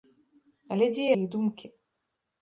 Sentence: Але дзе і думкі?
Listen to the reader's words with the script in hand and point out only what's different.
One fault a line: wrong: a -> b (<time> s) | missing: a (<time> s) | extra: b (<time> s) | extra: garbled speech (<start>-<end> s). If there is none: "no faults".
no faults